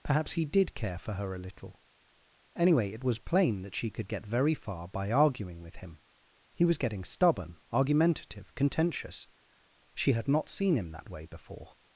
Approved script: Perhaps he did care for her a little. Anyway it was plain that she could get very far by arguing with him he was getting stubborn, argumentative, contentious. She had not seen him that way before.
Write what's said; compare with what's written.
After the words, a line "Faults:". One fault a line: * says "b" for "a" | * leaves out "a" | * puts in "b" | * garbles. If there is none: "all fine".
Perhaps he did care for her a little. Anyway it was plain that she could get very far by arguing with him he was getting stubborn, argumentative, contentious. She had not seen him that way before.
Faults:
all fine